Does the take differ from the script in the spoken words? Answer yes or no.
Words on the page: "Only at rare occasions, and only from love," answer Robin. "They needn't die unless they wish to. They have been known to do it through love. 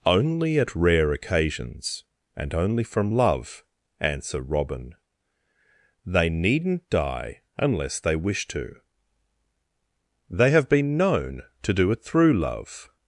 no